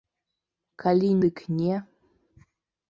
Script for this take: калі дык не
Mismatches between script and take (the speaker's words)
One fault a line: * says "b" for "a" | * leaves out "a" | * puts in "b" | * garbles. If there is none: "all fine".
all fine